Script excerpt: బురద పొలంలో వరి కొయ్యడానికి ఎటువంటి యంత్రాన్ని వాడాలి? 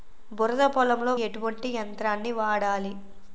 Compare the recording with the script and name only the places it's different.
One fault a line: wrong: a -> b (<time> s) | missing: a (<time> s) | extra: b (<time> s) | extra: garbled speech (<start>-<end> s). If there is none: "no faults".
missing: వరి కొయ్యడానికి (1.1 s)